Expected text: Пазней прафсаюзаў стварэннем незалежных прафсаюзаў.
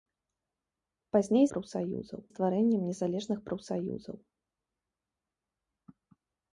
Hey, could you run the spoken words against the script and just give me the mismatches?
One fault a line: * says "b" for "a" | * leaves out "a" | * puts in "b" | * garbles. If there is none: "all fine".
all fine